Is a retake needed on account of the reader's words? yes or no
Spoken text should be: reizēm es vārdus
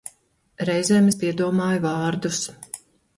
yes